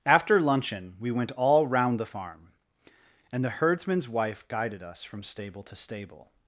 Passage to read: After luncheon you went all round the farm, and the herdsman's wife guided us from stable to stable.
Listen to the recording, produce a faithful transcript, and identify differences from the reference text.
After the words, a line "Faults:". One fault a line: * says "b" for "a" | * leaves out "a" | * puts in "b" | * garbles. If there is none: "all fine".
After luncheon we went all round the farm, and the herdsman's wife guided us from stable to stable.
Faults:
* says "we" for "you"